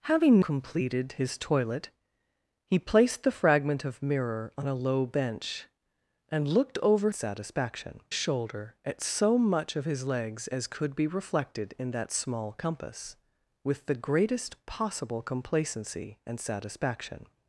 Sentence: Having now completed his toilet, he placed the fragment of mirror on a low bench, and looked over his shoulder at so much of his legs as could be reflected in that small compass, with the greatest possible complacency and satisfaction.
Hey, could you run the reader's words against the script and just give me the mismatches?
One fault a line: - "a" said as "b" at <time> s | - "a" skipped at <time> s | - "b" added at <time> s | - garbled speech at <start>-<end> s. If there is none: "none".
- "now" skipped at 0.4 s
- "his" said as "satisfaction" at 7.1 s